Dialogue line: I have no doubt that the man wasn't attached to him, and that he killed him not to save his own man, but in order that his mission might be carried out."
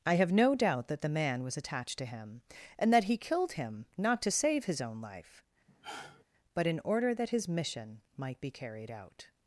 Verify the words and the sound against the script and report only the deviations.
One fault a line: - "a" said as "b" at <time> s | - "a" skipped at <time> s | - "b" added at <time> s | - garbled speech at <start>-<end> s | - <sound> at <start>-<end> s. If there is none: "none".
- "wasn't" said as "was" at 1.4 s
- "man" said as "life" at 5.0 s
- sigh at 5.7-6.2 s